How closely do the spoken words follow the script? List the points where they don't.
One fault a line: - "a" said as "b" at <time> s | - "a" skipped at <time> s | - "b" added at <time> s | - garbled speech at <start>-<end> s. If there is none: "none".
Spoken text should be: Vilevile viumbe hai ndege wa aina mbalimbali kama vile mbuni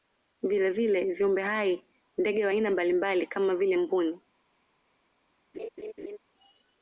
none